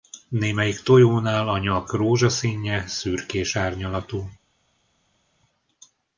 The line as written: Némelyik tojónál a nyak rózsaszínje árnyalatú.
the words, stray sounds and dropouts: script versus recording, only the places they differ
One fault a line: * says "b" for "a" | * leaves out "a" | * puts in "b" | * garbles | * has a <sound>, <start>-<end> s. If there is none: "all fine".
* puts in "szürkés"